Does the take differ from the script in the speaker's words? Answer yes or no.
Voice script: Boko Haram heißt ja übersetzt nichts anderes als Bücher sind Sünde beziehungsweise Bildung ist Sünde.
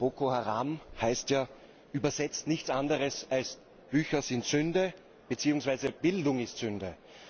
no